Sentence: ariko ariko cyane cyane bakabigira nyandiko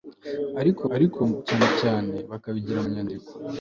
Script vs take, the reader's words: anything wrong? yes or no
no